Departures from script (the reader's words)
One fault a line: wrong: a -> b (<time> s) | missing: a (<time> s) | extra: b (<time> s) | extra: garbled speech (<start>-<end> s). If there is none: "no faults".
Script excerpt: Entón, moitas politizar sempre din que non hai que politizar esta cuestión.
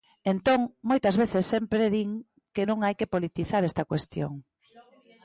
wrong: politizar -> veces (1.1 s)